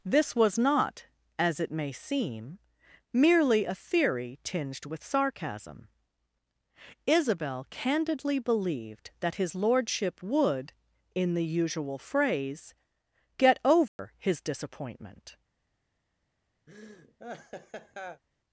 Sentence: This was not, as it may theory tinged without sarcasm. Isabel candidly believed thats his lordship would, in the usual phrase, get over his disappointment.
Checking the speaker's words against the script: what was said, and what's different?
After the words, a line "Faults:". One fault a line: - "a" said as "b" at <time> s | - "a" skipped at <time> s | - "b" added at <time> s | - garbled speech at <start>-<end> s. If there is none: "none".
This was not, as it may seem, merely a theory tinged with sarcasm. Isabel candidly believed that his lordship would, in the usual phrase, get over his disappointment.
Faults:
- "seem merely a" added at 1.9 s
- "without" said as "with" at 4.8 s
- "thats" said as "that" at 9.2 s